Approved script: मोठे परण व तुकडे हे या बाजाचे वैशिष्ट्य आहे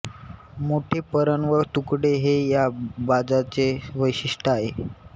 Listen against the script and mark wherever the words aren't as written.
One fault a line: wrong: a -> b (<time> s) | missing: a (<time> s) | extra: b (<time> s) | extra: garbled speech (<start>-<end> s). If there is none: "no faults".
no faults